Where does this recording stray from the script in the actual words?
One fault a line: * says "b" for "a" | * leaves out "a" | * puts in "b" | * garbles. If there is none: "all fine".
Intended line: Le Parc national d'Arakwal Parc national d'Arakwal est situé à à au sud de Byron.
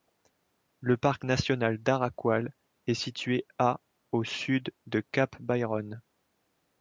* leaves out "Parc national d'Arakwal"
* leaves out "à"
* puts in "Cap"